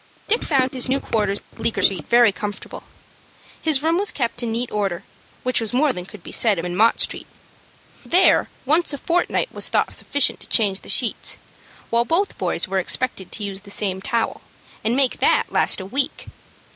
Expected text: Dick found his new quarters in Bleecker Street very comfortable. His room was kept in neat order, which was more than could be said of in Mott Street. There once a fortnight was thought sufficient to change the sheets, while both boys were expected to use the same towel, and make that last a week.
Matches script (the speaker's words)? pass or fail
pass